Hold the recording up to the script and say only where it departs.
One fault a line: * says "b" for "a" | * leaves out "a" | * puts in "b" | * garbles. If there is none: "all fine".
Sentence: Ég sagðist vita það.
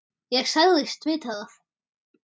all fine